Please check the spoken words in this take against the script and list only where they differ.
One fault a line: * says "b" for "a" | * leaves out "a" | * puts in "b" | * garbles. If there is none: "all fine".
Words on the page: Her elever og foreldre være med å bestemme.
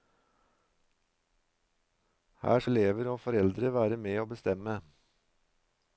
all fine